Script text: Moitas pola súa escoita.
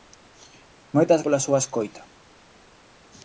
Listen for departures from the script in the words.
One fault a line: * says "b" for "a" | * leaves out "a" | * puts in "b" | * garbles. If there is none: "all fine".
all fine